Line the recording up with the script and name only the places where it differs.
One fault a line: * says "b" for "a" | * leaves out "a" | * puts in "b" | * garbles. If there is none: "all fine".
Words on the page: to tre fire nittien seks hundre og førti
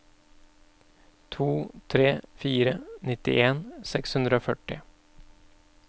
all fine